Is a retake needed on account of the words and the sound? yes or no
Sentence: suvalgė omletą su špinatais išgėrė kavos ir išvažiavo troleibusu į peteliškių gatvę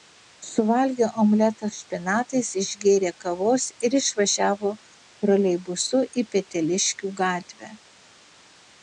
yes